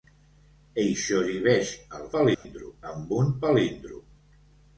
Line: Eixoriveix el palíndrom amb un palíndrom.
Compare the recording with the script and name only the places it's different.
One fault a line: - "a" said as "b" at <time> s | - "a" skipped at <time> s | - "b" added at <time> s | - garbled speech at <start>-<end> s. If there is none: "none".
none